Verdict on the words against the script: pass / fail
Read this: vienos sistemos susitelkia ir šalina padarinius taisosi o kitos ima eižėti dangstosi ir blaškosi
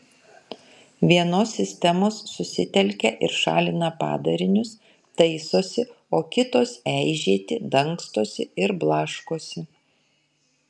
fail